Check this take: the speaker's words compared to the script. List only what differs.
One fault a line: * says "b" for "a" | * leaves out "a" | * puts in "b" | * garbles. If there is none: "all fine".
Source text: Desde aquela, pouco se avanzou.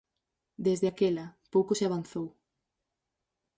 all fine